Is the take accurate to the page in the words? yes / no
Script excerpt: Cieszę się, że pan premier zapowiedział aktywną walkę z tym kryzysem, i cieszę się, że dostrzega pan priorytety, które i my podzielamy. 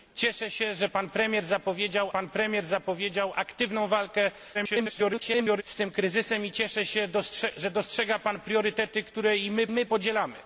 no